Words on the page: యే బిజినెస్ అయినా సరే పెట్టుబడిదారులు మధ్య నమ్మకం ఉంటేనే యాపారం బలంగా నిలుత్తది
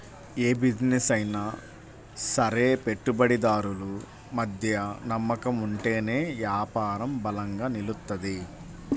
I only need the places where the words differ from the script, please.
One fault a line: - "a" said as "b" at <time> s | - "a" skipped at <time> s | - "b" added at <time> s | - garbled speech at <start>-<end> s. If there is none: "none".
none